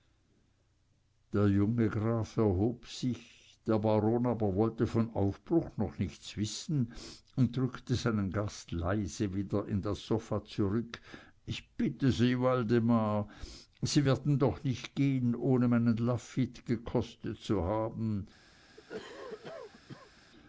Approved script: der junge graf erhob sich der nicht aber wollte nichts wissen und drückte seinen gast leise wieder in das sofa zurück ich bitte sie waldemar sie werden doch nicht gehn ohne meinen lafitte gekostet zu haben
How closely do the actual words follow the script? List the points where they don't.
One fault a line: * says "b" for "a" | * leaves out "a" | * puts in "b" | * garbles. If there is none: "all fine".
* says "baron" for "nicht"
* puts in "von aufbruch noch"